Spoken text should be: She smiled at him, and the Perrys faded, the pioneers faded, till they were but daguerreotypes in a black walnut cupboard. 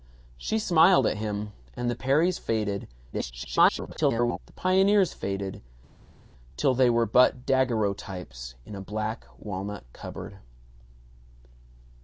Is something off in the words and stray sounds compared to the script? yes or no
yes